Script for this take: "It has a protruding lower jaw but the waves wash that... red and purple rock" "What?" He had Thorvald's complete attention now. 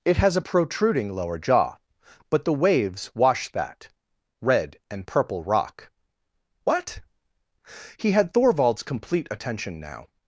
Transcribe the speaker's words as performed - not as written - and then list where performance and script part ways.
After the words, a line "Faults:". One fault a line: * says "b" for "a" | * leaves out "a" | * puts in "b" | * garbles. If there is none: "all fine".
"It has a protruding lower jaw but the waves wash that... red and purple rock" "What?" He had Thorvald's complete attention now.
Faults:
all fine